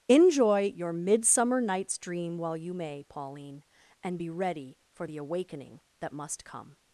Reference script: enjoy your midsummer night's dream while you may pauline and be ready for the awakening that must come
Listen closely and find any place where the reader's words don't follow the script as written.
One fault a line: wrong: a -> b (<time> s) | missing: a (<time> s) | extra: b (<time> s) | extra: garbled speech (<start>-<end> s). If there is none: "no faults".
no faults